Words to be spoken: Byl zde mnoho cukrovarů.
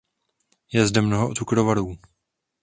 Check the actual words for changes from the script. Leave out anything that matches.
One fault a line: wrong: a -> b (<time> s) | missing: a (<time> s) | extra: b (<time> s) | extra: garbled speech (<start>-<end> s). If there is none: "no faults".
wrong: Byl -> Je (0.7 s)